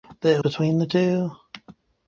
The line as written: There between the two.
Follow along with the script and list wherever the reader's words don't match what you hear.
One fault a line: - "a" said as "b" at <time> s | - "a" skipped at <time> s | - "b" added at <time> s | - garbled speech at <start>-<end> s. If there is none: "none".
none